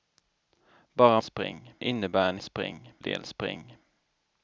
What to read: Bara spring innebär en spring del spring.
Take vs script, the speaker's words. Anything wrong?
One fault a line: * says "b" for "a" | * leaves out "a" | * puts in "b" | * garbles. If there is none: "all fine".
all fine